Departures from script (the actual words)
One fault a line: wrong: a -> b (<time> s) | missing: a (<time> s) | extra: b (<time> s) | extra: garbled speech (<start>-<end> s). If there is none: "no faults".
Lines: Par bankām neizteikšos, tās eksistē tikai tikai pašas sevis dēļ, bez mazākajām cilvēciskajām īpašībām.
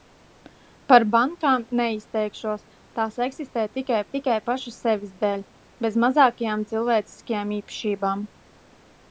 no faults